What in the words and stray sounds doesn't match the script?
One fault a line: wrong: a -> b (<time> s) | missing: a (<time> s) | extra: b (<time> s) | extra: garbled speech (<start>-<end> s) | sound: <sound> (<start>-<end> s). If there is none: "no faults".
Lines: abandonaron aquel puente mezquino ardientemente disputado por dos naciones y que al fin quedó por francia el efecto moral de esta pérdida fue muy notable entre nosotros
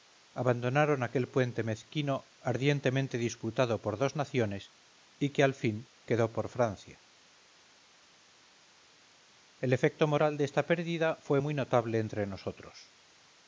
no faults